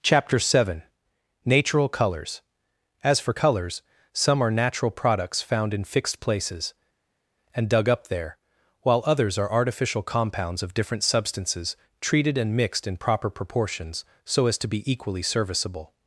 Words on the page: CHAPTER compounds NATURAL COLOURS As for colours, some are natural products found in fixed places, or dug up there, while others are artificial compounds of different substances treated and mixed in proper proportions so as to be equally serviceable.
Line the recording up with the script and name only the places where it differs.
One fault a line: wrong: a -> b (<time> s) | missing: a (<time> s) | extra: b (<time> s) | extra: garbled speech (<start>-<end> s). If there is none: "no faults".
wrong: compounds -> seven (0.4 s)
wrong: or -> and (7.5 s)